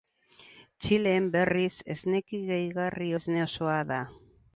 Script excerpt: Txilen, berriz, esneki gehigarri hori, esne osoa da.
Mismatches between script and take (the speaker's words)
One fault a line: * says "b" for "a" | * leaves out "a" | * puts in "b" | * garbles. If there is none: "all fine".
* leaves out "hori"